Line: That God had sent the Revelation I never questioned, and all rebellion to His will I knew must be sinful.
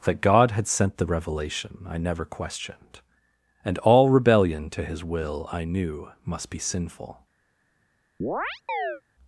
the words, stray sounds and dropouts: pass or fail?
fail